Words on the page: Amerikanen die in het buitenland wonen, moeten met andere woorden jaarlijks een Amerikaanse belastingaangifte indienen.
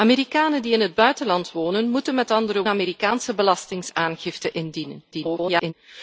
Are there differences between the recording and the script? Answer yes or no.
yes